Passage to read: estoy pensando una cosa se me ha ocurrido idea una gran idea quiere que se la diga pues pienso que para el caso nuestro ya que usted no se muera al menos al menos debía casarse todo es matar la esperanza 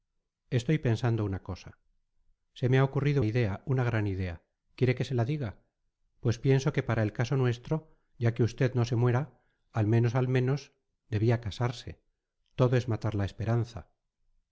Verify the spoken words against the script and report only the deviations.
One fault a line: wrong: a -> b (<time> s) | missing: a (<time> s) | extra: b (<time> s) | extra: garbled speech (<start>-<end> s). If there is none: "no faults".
no faults